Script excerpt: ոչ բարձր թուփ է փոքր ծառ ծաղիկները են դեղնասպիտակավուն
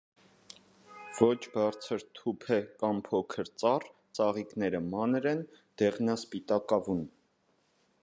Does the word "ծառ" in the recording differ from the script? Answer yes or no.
no